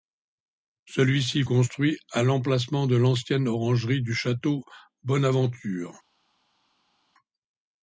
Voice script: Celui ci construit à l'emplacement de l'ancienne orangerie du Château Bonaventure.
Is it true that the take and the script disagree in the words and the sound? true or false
false